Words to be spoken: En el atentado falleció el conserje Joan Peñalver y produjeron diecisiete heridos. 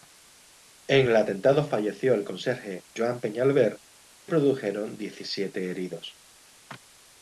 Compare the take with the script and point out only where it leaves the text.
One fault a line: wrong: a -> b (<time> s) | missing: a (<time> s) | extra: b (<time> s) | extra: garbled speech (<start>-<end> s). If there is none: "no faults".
no faults